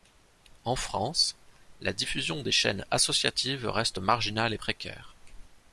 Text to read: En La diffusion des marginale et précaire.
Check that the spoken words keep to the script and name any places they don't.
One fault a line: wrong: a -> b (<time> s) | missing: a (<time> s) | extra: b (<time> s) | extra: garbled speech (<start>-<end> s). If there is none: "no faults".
extra: France (0.7 s)
extra: chaînes associatives reste (2.5 s)